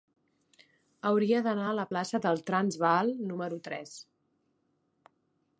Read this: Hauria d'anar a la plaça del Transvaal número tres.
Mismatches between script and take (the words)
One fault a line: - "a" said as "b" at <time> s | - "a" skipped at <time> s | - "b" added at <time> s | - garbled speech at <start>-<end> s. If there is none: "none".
none